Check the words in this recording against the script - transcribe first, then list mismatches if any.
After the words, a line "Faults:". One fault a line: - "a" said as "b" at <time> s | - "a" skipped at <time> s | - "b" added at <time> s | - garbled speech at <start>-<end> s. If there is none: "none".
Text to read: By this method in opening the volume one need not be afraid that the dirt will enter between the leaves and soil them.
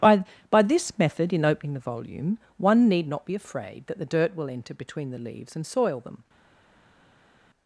By by this method in opening the volume one need not be afraid that the dirt will enter between the leaves and soil them.
Faults:
- "by" added at 0.5 s